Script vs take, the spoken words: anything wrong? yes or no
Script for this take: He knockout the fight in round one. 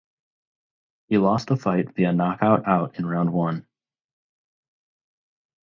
yes